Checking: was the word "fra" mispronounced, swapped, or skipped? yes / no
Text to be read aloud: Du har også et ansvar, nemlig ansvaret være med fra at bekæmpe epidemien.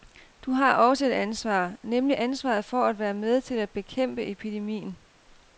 yes